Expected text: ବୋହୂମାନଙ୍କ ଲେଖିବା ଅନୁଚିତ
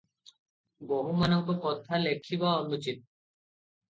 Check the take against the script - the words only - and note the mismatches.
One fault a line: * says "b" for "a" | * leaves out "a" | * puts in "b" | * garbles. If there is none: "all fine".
* puts in "କଥା"